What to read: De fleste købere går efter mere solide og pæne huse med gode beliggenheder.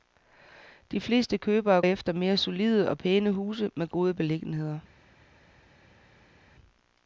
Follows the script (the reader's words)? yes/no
no